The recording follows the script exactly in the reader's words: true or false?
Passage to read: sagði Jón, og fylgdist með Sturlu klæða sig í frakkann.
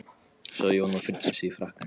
false